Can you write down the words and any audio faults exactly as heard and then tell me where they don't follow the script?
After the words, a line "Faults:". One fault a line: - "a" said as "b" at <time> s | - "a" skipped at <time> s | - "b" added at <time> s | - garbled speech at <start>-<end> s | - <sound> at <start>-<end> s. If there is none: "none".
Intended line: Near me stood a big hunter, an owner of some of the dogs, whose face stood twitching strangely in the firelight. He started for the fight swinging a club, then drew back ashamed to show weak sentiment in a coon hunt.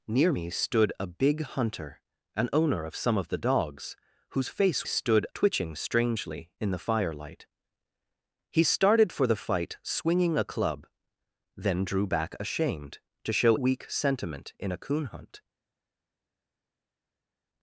Near me stood a big hunter, an owner of some of the dogs, whose face stood twitching strangely in the firelight. He started for the fight swinging a club, then drew back ashamed to show weak sentiment in a coon hunt.
Faults:
none